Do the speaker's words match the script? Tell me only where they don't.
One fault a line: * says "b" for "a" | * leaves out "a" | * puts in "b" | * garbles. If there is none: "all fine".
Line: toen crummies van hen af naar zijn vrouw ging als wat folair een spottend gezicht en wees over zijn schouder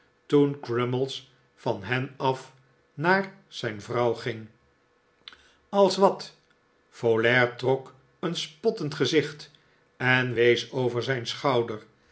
* puts in "trok"